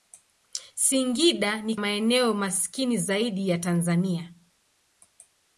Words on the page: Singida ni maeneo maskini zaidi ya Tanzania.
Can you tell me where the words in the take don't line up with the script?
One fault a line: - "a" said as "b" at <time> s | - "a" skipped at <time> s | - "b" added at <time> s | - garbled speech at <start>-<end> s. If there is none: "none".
none